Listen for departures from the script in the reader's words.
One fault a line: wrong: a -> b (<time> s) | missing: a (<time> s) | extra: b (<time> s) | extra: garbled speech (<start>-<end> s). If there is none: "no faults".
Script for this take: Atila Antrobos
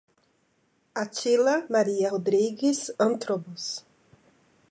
extra: Maria Rodrigues (1.7 s)